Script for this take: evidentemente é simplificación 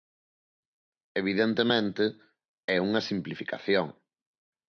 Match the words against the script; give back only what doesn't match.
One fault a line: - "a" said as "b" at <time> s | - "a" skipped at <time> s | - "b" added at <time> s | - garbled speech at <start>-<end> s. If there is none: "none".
- "unha" added at 2.9 s